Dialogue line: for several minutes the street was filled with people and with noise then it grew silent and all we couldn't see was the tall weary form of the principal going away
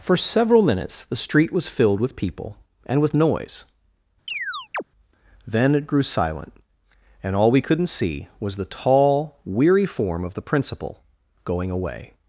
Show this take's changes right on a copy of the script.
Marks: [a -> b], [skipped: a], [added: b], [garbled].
for several minutes the street was filled with people and with noise then it grew silent and all we couldn't see was the tall weary form of the principal going away